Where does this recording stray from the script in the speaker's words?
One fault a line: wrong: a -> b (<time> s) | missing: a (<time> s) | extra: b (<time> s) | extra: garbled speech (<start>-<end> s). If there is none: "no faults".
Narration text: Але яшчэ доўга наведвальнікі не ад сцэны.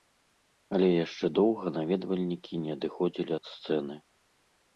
extra: адыходзілі (2.8 s)